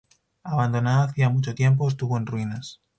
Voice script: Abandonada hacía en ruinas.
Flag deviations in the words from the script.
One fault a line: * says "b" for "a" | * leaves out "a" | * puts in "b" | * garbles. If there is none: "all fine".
* puts in "mucho tiempo estuvo"